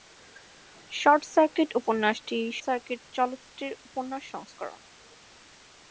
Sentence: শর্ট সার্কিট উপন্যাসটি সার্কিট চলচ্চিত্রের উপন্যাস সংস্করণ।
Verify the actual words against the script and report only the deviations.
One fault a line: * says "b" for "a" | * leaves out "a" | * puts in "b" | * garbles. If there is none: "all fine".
all fine